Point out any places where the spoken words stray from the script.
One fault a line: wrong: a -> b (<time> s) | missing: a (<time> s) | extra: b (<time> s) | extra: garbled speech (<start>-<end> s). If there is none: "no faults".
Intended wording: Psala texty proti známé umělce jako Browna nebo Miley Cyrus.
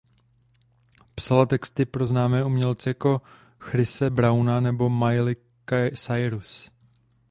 wrong: proti -> pro (1.9 s)
extra: Chrise (3.6 s)